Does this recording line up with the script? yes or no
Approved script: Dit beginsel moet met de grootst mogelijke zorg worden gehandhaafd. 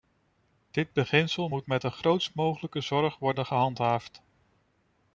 yes